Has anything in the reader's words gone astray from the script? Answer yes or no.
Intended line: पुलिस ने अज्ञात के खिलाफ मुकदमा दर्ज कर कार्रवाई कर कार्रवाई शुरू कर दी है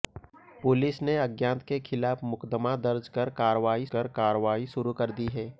no